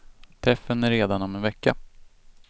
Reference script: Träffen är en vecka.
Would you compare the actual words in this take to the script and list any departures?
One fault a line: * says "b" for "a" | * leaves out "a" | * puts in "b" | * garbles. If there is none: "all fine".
* puts in "redan om"